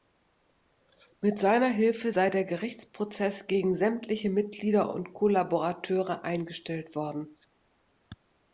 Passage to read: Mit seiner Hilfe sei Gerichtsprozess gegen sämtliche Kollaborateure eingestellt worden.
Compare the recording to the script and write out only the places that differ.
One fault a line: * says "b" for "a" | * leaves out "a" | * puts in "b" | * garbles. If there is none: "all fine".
* puts in "der"
* puts in "Mitglieder und"